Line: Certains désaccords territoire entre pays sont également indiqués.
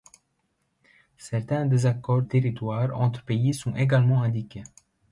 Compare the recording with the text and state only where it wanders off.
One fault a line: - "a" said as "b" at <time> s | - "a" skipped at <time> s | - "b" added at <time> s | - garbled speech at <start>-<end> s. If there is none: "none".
none